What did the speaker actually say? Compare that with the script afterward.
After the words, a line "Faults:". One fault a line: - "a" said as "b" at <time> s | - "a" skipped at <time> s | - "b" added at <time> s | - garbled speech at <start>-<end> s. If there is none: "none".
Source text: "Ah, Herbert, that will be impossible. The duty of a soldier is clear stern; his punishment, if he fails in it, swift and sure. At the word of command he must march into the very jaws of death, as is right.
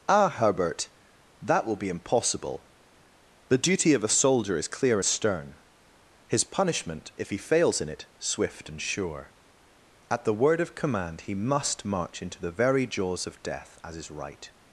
"Ah, Herbert, that will be impossible. The duty of a soldier is clear stern; his punishment, if he fails in it, swift and sure. At the word of command he must march into the very jaws of death, as is right.
Faults:
none